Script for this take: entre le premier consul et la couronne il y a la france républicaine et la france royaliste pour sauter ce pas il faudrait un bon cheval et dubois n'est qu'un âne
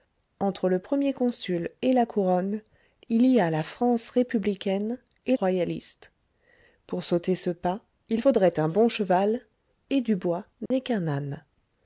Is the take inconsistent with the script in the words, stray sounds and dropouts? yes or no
yes